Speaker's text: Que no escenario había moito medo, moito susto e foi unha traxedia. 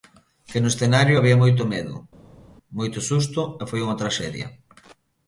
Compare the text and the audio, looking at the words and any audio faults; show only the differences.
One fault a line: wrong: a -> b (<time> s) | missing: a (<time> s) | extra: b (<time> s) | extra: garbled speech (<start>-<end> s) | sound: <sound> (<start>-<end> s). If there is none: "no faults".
no faults